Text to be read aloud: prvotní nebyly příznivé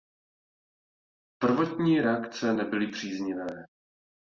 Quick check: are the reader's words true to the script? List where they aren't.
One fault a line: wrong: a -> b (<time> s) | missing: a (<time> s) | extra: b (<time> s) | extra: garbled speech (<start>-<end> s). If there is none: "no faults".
extra: reakce (2.0 s)